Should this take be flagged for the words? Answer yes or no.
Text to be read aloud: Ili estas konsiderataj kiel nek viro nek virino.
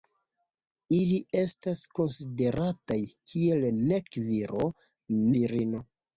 yes